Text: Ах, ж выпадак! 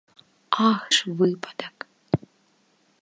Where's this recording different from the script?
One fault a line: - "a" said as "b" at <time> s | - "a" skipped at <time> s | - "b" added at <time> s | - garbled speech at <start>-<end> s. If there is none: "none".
none